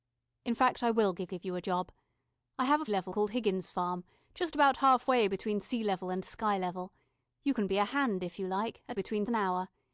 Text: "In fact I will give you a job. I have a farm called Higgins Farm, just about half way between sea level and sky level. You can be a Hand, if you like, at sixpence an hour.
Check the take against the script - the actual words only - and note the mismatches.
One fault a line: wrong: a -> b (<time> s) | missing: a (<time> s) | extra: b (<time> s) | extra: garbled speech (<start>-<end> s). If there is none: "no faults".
extra: give (1.3 s)
wrong: farm -> level (2.9 s)
wrong: sixpence -> between (8.9 s)